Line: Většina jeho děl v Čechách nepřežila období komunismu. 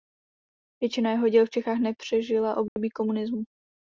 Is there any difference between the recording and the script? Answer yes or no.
no